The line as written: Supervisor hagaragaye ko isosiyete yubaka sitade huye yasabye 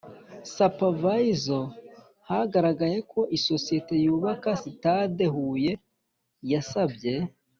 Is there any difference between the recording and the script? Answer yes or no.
no